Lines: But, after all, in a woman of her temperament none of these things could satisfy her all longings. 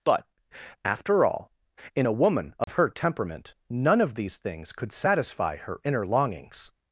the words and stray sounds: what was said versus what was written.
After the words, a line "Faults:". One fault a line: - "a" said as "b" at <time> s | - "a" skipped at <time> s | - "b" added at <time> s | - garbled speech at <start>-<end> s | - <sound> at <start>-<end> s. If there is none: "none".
But, after all, in a woman of her temperament none of these things could satisfy her inner longings.
Faults:
- dropout at 2.6-2.7 s
- "all" said as "inner" at 5.8 s